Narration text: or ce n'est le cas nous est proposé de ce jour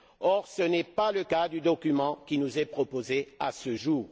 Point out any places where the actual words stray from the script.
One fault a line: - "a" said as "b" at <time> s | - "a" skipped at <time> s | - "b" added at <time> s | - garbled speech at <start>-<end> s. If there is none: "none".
- "pas" added at 0.8 s
- "du document qui" added at 1.5 s
- "de" said as "à" at 3.4 s